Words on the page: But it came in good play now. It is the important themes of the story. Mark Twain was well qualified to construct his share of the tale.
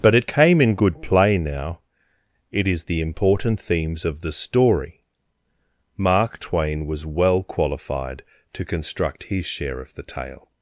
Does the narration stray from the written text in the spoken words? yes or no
no